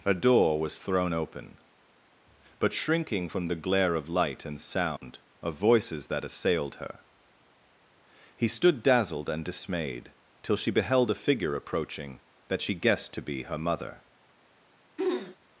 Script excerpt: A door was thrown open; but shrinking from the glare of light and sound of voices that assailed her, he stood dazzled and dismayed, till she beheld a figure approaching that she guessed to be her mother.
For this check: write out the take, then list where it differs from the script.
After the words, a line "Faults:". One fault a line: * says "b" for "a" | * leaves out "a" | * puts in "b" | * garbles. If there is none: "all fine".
A door was thrown open; but shrinking from the glare of light and sound of voices that assailed her, he stood dazzled and dismayed, till she beheld a figure approaching that she guessed to be her mother.
Faults:
all fine